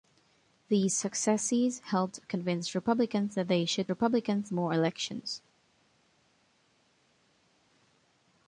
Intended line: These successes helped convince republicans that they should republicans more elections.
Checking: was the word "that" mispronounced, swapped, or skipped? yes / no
no